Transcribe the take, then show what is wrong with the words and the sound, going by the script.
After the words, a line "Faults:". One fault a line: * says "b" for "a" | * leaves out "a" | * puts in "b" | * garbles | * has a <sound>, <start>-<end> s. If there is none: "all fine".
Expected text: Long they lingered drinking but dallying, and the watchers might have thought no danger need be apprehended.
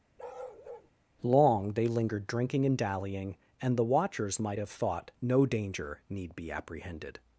Long they lingered drinking and dallying, and the watchers might have thought no danger need be apprehended.
Faults:
* has a bark, 0.2-0.9 s
* says "and" for "but"